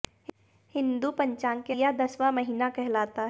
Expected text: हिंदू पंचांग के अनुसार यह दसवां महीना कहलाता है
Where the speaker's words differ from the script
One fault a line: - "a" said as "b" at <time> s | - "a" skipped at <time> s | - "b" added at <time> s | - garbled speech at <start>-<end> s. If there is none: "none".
- "अनुसार" skipped at 1.7 s